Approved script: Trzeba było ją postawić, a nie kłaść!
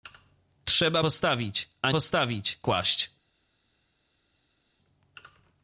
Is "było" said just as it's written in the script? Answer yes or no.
no